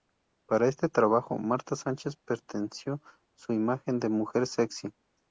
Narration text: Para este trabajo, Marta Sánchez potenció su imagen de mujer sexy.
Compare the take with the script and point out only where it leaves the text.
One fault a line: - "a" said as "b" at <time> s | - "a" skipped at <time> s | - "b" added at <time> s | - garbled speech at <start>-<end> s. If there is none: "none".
none